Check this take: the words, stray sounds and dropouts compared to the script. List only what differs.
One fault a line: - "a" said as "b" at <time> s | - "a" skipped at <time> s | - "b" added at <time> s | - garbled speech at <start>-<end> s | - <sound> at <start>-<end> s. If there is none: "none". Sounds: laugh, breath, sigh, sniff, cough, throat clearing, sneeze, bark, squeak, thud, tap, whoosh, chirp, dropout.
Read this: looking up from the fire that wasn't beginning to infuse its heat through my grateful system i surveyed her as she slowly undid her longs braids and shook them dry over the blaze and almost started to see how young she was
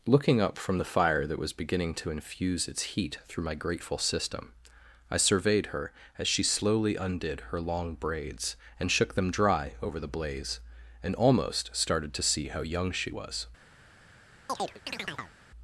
- "wasn't" said as "was" at 1.4 s
- "longs" said as "long" at 7.6 s
- chirp at 14.5-15.4 s